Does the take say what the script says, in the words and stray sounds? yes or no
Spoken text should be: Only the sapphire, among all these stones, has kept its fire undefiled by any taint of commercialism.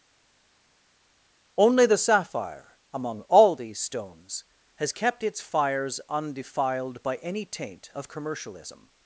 no